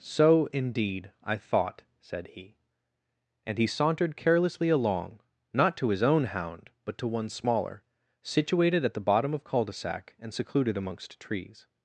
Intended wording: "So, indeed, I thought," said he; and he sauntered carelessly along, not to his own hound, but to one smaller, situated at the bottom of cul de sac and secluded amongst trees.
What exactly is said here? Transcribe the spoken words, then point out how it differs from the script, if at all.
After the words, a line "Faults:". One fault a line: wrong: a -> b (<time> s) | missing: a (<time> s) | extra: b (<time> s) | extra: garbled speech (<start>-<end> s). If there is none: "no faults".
"So, indeed, I thought," said he; and he sauntered carelessly along, not to his own hound, but to one smaller, situated at the bottom of cul de sac and secluded amongst trees.
Faults:
no faults